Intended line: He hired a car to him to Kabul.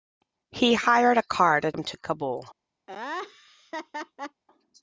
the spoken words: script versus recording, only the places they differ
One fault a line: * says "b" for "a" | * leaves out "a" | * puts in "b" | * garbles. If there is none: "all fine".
all fine